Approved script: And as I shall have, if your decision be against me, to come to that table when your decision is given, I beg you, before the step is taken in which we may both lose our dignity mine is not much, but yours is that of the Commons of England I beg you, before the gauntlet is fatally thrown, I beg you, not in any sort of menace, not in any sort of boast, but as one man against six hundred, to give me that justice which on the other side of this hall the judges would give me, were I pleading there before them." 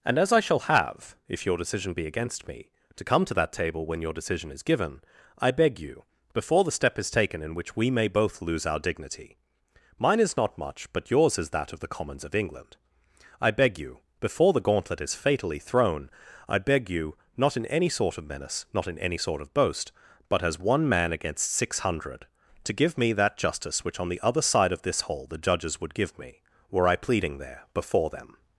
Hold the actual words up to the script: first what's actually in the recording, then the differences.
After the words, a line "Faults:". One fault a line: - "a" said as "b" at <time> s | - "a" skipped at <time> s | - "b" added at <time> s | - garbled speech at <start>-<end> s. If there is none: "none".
And as I shall have, if your decision be against me, to come to that table when your decision is given, I beg you, before the step is taken in which we may both lose our dignity mine is not much, but yours is that of the Commons of England I beg you, before the gauntlet is fatally thrown, I beg you, not in any sort of menace, not in any sort of boast, but as one man against six hundred, to give me that justice which on the other side of this hall the judges would give me, were I pleading there before them."
Faults:
none